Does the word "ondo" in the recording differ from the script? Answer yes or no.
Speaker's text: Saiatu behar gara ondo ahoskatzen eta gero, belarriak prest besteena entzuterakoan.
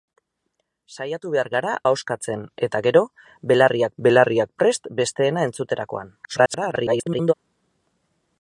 yes